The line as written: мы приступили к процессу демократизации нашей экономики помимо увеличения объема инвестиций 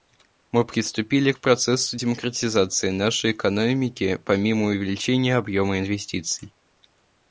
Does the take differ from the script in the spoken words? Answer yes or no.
no